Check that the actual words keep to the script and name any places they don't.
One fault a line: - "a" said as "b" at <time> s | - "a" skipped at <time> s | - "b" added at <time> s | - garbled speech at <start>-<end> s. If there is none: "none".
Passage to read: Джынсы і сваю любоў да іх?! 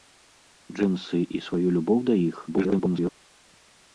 - garbled speech at 2.5-3.1 s